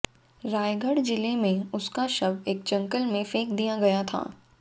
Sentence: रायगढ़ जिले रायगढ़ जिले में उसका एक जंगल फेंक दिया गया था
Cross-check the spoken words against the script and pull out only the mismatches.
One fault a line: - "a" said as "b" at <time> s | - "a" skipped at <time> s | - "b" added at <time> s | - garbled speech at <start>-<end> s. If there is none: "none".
- "रायगढ़ जिले" skipped at 1.4 s
- "शव" added at 2.1 s
- "में" added at 3.0 s